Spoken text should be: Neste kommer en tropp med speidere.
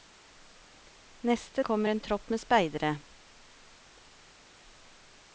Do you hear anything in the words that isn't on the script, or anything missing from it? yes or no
no